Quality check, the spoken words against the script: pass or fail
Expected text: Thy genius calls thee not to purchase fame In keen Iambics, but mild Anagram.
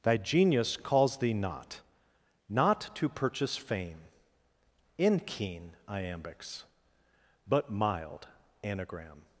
fail